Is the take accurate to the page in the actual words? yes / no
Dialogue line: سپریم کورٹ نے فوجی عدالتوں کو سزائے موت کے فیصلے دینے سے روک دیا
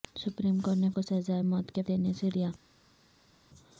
no